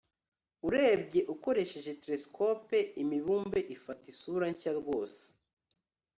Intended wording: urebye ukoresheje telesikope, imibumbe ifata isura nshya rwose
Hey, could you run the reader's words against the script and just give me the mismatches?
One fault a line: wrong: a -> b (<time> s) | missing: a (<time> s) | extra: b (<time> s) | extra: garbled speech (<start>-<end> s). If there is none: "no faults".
no faults